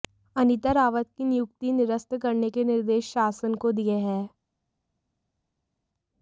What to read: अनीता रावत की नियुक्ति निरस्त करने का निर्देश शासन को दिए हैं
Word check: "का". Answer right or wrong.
wrong